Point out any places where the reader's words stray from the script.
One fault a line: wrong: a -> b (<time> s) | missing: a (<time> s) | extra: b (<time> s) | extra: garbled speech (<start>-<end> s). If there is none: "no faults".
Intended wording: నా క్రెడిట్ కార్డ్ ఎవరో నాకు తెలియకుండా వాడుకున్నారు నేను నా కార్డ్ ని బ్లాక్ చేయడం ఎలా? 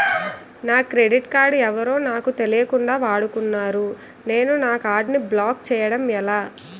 no faults